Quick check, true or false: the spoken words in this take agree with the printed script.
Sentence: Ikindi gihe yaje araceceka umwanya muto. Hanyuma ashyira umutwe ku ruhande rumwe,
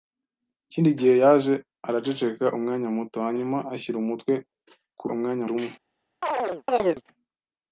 false